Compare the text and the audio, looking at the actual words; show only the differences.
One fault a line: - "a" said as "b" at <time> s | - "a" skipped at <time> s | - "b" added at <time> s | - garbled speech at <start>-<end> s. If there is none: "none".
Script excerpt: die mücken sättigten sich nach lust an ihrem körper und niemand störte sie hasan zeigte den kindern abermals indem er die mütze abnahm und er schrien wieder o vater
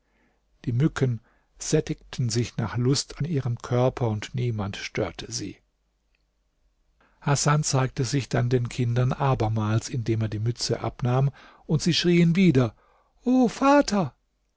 - "sich dann" added at 8.0 s
- "er" said as "sie" at 11.8 s